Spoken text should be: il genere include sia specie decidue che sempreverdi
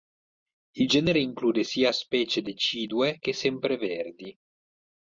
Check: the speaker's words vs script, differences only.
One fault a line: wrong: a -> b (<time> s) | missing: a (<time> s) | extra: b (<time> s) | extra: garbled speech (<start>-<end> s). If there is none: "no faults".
no faults